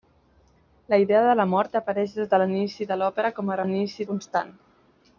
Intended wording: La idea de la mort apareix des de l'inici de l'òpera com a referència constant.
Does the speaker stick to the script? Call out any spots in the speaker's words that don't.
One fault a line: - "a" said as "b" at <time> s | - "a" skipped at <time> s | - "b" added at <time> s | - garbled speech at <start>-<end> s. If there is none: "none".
- "referència" said as "l'inici" at 3.6 s